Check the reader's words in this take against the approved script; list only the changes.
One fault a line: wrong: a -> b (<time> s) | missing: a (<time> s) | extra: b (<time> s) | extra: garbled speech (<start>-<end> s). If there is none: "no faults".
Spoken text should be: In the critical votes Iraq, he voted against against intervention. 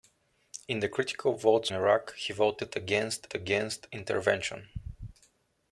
no faults